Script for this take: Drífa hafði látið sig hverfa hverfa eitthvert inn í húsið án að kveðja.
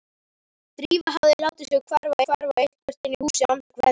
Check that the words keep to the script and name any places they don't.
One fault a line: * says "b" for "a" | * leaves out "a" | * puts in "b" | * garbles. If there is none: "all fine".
all fine